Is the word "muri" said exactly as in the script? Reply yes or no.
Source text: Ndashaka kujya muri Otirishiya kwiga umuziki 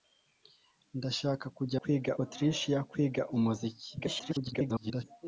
no